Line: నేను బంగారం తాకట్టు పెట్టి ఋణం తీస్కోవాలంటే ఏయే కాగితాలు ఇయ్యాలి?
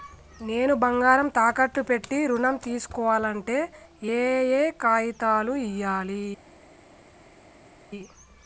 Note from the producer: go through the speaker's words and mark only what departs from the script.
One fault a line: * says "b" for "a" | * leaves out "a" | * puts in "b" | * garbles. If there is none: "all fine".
all fine